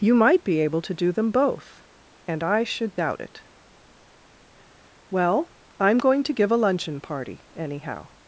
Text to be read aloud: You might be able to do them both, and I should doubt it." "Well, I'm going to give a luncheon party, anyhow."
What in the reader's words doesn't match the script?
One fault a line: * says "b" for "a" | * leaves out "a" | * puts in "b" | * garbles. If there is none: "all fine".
all fine